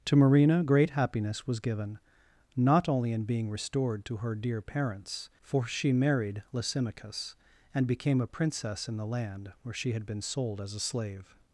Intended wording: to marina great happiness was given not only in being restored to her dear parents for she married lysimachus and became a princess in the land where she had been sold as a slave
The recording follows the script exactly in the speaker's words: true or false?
true